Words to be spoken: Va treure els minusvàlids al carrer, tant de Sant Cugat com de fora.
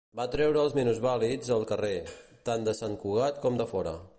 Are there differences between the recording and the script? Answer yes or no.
no